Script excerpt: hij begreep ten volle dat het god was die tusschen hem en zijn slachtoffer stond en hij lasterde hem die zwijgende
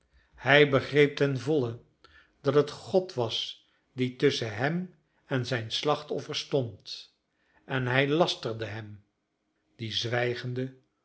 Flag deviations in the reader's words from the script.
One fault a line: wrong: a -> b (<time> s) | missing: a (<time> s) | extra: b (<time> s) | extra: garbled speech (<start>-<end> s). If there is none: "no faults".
no faults